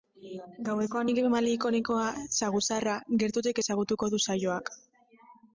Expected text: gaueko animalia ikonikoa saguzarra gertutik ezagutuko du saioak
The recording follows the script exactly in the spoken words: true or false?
true